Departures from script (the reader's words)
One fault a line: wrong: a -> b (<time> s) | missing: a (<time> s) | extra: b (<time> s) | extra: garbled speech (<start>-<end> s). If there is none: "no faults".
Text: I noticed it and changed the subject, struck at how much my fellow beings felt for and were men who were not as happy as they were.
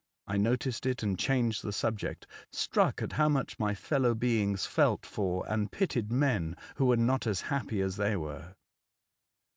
wrong: were -> pitied (5.7 s)